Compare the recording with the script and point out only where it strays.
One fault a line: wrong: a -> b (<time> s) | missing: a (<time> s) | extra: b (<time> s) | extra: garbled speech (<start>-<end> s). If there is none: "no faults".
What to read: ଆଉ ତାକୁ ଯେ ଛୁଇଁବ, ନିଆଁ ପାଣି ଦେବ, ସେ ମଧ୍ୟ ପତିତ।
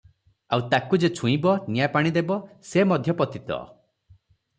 no faults